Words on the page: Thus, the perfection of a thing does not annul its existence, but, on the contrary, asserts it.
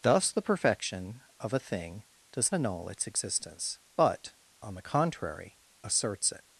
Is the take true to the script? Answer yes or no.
no